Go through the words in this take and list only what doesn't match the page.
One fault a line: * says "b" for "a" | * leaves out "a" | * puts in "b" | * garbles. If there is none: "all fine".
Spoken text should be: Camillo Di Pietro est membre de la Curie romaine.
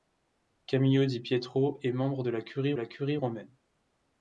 * puts in "la Curie"